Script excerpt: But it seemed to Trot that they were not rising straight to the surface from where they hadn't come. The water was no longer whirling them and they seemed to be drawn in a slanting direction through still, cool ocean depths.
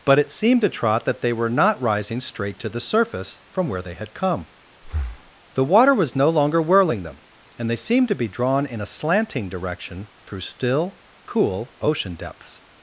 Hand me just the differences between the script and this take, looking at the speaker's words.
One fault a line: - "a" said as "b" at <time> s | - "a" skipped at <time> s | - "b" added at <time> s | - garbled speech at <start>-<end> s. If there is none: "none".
- "hadn't" said as "had" at 3.9 s